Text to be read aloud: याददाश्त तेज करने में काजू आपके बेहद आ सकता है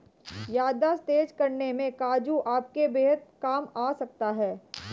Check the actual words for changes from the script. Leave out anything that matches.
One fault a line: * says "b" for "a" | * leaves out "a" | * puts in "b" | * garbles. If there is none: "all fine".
* puts in "काम"